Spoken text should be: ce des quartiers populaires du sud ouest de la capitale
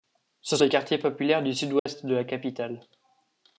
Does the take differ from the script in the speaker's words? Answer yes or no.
no